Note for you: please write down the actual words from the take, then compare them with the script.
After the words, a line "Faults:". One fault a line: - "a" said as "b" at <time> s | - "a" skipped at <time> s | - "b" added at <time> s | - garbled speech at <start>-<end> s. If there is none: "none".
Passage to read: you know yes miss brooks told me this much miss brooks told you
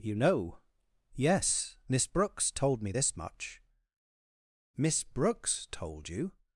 you know yes miss brooks told me this much miss brooks told you
Faults:
none